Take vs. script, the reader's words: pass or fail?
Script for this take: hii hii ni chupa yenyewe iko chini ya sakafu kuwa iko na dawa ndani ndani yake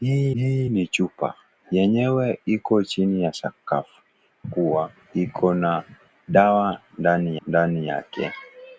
pass